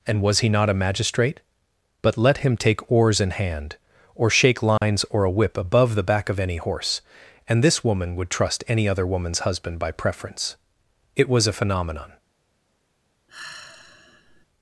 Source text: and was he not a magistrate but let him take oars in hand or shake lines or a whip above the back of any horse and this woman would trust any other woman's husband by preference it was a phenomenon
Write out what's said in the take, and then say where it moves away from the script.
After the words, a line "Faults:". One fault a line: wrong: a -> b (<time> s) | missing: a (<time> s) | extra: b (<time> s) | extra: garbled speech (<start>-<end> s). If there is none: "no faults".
and was he not a magistrate but let him take oars in hand or shake lines or a whip above the back of any horse and this woman would trust any other woman's husband by preference it was a phenomenon
Faults:
no faults